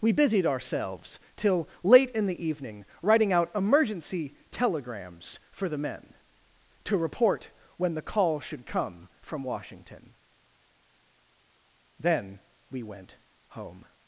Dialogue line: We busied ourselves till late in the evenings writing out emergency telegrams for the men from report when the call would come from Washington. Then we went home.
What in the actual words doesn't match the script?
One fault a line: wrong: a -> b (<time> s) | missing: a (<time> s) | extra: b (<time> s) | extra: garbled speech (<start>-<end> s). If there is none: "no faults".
wrong: evenings -> evening (2.5 s)
wrong: from -> to (6.8 s)
wrong: would -> should (8.4 s)